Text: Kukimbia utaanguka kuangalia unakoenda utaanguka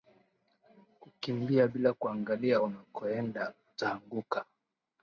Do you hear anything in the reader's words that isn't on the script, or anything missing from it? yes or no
yes